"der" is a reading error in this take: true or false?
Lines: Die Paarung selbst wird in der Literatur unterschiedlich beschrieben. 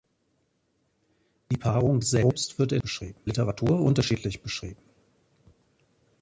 true